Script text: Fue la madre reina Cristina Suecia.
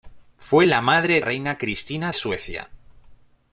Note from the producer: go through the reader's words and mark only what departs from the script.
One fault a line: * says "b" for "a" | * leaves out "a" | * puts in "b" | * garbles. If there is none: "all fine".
all fine